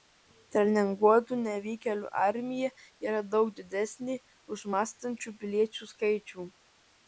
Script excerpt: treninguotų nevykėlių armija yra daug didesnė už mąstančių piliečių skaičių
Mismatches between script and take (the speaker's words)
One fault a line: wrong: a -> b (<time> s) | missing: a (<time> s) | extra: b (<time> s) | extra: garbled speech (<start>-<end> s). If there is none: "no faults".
no faults